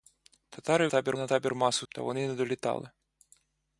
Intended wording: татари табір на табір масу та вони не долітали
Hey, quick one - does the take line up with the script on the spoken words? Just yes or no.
yes